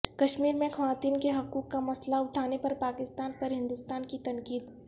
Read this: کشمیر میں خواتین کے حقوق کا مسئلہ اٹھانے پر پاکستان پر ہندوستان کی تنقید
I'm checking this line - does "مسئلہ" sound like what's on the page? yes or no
yes